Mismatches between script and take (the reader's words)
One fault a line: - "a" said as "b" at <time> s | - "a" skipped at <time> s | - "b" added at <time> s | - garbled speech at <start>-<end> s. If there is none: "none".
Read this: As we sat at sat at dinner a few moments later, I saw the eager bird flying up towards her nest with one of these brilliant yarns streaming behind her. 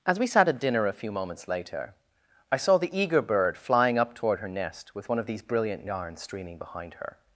- "sat at" skipped at 0.6 s
- "towards" said as "toward" at 4.2 s